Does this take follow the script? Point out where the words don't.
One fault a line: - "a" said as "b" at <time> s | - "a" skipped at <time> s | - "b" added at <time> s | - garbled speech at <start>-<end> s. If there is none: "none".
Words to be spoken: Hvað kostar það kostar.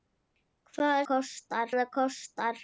none